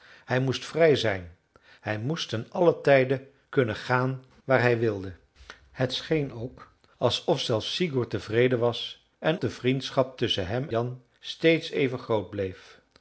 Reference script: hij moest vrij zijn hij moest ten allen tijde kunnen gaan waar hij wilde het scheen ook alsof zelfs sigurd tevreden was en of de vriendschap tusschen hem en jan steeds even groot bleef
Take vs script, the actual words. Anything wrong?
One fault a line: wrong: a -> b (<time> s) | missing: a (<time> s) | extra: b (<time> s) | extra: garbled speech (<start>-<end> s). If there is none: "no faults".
missing: of (9.4 s)
missing: en (10.7 s)